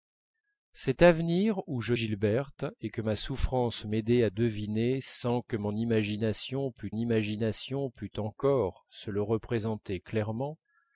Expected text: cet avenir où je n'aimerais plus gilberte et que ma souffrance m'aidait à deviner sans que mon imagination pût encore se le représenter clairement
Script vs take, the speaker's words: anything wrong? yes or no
yes